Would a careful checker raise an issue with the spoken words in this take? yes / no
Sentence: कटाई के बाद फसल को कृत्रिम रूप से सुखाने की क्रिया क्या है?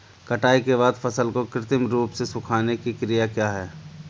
no